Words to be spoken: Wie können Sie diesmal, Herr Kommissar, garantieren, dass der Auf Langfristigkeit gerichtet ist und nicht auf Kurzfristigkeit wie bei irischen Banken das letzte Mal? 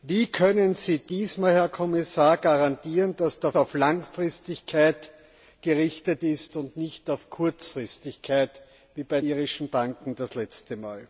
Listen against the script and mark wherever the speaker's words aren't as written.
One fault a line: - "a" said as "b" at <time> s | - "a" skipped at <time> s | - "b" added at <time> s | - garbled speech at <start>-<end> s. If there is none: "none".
none